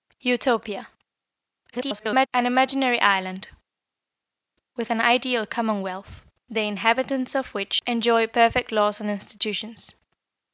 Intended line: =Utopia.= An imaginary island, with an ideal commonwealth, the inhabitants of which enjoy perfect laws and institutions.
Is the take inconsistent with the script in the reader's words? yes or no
yes